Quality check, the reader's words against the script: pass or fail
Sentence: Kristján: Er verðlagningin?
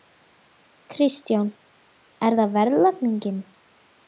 fail